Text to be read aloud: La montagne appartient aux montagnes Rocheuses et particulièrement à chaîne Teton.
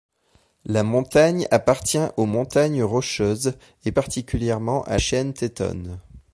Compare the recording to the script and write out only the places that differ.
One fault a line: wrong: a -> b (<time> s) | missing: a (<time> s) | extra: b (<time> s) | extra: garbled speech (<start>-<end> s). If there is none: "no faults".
no faults